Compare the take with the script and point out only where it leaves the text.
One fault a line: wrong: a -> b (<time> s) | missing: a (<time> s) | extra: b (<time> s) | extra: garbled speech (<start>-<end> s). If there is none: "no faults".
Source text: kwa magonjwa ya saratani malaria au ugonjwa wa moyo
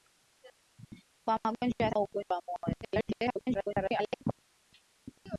missing: saratani malaria (1.9 s)
extra: garbled speech (2.8-4.2 s)